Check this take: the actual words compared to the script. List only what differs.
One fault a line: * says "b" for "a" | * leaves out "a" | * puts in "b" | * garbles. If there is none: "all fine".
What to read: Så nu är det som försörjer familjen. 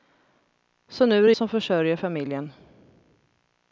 all fine